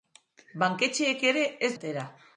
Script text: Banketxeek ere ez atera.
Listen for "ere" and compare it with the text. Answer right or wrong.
right